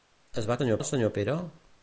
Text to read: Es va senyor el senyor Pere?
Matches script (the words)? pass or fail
pass